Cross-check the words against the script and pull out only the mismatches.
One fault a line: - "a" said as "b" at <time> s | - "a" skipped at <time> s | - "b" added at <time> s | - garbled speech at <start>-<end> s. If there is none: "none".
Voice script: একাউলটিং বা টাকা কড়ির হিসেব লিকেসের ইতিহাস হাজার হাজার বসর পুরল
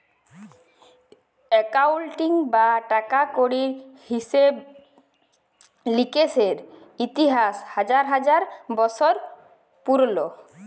none